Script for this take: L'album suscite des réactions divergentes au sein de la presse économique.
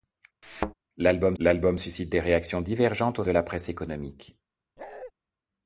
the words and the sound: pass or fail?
fail